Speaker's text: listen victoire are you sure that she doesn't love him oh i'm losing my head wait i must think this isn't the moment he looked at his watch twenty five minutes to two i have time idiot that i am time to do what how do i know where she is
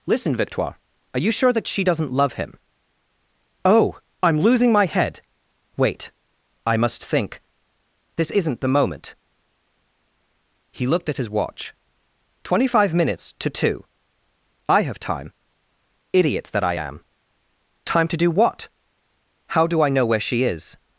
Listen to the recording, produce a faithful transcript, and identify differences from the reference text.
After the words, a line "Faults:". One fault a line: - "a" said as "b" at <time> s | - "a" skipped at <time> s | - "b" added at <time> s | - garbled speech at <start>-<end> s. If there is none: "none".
listen victoire are you sure that she doesn't love him oh i'm losing my head wait i must think this isn't the moment he looked at his watch twenty five minutes to two i have time idiot that i am time to do what how do i know where she is
Faults:
none